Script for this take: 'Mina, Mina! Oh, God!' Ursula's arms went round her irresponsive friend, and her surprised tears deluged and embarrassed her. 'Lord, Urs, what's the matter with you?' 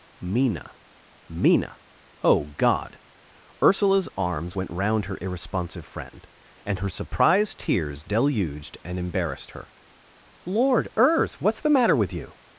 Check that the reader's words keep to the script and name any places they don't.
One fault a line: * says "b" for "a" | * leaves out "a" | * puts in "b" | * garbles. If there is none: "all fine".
all fine